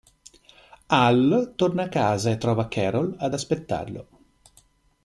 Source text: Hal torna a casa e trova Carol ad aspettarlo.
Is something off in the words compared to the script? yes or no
no